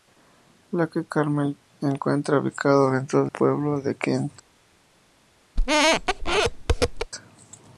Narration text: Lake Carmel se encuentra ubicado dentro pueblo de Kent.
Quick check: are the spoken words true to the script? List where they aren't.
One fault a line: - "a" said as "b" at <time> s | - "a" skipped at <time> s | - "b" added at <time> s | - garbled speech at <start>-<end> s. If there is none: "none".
none